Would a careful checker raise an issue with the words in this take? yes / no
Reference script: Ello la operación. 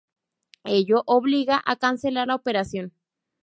yes